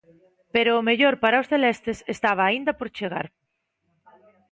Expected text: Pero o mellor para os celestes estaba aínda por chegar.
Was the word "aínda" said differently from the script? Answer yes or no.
no